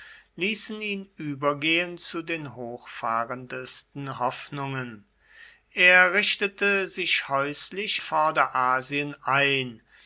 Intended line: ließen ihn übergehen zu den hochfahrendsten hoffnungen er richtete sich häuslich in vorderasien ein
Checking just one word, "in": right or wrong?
wrong